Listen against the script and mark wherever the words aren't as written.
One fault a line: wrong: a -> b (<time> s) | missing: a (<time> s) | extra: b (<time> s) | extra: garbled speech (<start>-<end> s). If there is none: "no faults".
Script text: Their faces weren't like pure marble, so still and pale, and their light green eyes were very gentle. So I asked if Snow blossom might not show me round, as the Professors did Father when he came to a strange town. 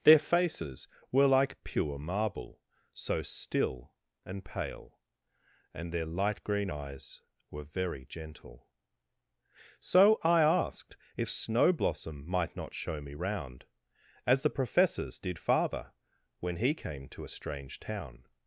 wrong: weren't -> were (1.1 s)